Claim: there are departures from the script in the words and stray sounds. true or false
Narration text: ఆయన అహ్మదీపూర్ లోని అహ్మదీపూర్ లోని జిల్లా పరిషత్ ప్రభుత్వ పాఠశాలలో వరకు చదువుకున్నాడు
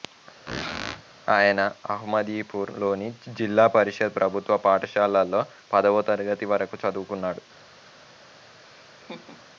true